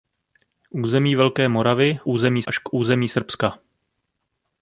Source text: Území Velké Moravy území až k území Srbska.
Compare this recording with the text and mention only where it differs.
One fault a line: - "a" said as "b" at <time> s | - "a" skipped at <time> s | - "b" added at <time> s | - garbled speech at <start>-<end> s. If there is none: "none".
none